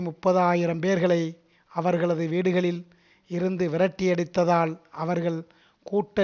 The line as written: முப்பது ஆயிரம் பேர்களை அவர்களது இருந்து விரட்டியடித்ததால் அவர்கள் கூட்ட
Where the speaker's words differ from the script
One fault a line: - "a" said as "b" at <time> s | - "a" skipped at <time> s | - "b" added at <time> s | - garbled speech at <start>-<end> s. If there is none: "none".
- "வீடுகளில்" added at 2.3 s